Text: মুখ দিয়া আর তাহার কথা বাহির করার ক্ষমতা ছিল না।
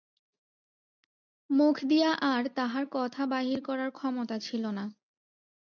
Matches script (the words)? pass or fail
pass